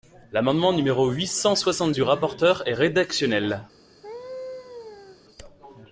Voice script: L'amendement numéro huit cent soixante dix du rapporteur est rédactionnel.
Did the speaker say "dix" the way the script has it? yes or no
no